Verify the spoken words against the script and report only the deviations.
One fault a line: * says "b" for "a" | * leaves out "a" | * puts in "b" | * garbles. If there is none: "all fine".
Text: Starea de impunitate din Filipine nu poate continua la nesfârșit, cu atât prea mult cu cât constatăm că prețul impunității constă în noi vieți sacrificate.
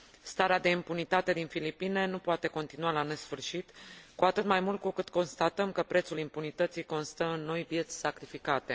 * says "mai" for "prea"